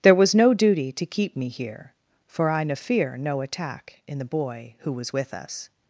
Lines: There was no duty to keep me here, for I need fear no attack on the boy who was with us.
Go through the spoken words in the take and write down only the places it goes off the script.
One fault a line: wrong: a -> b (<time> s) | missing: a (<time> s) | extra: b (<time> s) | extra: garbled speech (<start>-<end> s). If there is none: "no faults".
wrong: need -> ne (2.6 s)
wrong: on -> in (4.1 s)